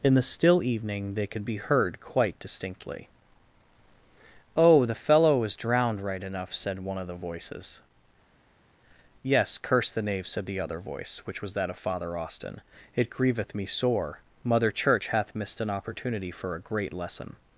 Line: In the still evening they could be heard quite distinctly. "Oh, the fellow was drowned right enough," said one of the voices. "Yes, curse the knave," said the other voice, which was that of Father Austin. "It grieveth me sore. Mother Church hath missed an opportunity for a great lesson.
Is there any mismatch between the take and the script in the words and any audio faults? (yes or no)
no